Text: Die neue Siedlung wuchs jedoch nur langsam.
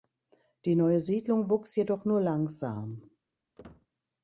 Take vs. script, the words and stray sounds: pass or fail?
fail